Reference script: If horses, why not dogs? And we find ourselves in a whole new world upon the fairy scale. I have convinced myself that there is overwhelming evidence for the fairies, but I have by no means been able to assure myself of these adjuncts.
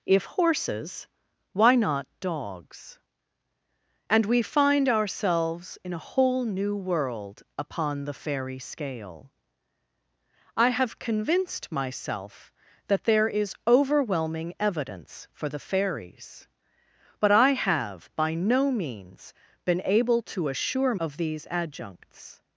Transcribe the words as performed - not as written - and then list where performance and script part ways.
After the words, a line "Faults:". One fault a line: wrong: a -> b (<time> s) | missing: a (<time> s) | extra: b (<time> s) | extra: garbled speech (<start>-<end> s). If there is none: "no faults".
If horses, why not dogs? And we find ourselves in a whole new world upon the fairy scale. I have convinced myself that there is overwhelming evidence for the fairies, but I have by no means been able to assure of these adjuncts.
Faults:
missing: myself (20.9 s)